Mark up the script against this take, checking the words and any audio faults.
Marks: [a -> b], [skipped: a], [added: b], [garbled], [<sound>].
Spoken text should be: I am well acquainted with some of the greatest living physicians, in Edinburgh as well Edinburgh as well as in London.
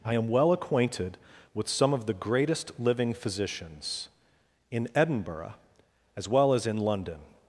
I am well acquainted with some of the greatest living physicians, in Edinburgh as well [skipped: Edinburgh as well] as in London.